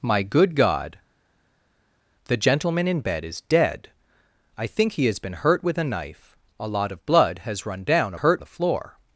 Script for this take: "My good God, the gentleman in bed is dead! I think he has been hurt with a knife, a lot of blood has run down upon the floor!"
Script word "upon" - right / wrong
wrong